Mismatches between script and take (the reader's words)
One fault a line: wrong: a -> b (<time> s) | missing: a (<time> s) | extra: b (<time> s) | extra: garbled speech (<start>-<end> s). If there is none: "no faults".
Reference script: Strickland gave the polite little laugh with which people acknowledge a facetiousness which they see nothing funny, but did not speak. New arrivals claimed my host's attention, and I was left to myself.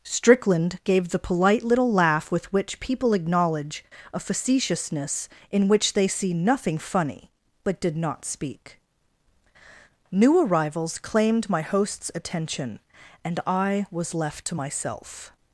extra: in (5.5 s)